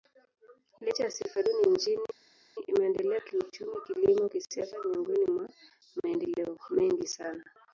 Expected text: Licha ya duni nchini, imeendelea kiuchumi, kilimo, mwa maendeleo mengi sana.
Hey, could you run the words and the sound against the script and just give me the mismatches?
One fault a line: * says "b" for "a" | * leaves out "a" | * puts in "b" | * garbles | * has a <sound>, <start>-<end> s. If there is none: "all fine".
* puts in "sifa"
* puts in "kisiasa miongoni"